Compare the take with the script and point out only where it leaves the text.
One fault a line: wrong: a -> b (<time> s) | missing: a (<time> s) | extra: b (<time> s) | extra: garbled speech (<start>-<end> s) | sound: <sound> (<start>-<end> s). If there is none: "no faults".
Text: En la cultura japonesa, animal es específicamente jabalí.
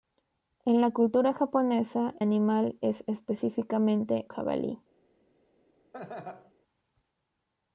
sound: laugh (5.9-6.5 s)